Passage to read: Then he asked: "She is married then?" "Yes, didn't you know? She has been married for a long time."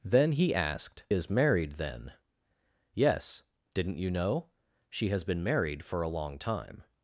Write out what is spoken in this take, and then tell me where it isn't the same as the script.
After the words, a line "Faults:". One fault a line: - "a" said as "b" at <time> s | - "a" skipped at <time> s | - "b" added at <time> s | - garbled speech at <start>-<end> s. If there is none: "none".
Then he asked: "Is married then?" "Yes, didn't you know? She has been married for a long time."
Faults:
- "She" skipped at 1.0 s